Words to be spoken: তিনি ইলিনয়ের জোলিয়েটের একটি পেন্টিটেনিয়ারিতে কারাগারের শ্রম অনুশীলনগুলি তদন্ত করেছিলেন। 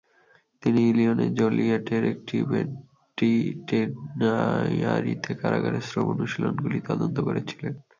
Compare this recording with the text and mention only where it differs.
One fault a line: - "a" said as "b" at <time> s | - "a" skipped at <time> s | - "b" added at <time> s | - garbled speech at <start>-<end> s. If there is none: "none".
none